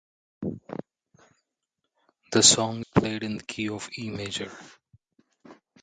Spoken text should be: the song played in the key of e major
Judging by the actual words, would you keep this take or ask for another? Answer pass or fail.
pass